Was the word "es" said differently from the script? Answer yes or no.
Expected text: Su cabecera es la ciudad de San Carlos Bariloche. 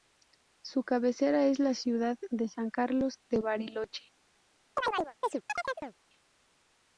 no